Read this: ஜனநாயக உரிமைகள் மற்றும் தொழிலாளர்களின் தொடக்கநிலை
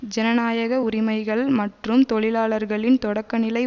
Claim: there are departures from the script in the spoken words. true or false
false